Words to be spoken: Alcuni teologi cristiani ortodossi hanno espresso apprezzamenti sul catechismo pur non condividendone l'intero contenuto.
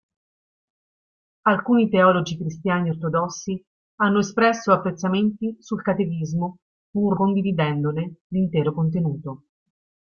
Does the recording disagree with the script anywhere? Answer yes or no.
yes